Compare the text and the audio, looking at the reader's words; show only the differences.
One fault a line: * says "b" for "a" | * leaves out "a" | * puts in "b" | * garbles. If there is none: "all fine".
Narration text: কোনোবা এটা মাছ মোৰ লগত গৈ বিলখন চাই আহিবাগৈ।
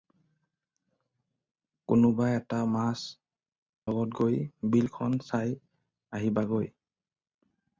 * leaves out "মোৰ"